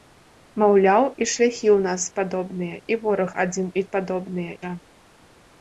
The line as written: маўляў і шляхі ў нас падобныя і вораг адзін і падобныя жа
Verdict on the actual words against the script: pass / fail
pass